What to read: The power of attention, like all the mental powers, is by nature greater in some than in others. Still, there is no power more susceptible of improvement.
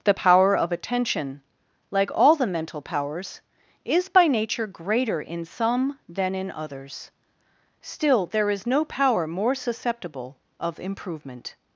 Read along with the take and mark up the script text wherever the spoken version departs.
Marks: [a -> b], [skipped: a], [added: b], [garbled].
The power of attention, like all the mental powers, is by nature greater in some than in others. Still, there is no power more susceptible of improvement.